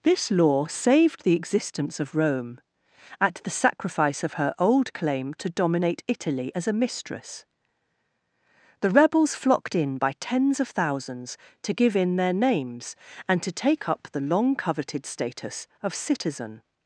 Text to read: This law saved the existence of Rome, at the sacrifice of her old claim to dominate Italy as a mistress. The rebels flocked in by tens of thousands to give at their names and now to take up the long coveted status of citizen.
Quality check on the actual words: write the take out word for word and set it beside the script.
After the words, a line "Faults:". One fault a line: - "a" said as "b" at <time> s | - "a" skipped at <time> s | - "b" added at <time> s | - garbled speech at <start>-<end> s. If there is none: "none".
This law saved the existence of Rome, at the sacrifice of her old claim to dominate Italy as a mistress. The rebels flocked in by tens of thousands to give in their names and to take up the long coveted status of citizen.
Faults:
- "at" said as "in" at 12.0 s
- "now" skipped at 13.4 s